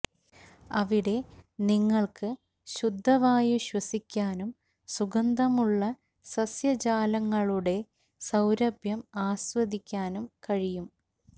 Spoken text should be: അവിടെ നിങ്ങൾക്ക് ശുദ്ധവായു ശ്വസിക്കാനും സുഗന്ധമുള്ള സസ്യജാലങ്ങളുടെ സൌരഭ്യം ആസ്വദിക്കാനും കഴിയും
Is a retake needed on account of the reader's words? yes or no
no